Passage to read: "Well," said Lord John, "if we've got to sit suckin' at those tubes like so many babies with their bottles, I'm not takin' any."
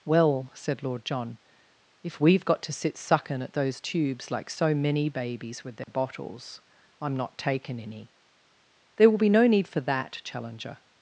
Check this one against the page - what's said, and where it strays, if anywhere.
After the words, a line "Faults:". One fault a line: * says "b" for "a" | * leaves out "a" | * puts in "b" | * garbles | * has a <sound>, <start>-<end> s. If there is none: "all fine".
"Well," said Lord John, "if we've got to sit suckin' at those tubes like so many babies with their bottles, I'm not takin' any." "There will be no need for that," Challenger
Faults:
* has a dropout, 5.8-5.9 s
* puts in "There will be no need for that Challenger"